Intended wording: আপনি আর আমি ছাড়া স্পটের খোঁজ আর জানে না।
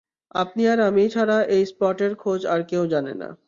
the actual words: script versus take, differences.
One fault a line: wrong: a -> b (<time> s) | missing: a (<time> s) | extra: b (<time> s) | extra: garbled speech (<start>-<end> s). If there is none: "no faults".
extra: এই (1.5 s)
extra: কেউ (2.7 s)